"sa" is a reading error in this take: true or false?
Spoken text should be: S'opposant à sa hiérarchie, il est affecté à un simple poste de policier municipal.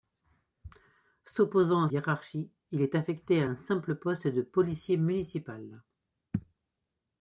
true